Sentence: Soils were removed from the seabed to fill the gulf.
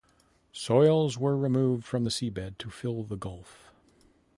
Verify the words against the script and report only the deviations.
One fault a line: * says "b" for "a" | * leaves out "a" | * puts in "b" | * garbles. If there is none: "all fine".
all fine